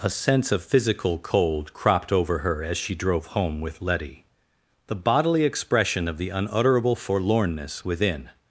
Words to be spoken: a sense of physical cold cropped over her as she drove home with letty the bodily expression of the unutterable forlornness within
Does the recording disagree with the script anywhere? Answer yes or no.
no